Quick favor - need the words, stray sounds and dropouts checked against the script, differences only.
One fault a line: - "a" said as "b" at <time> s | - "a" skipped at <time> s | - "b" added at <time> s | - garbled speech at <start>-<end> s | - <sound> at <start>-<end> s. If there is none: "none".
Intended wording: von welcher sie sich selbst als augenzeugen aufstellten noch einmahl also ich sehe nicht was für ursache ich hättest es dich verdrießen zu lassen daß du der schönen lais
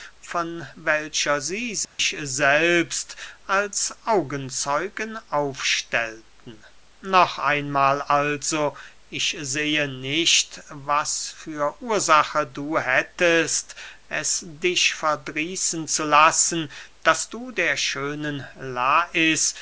- dropout at 1.8-2.0 s
- "ich" said as "du" at 12.5 s